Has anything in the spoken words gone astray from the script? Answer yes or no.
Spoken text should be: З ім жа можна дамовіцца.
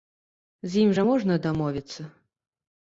no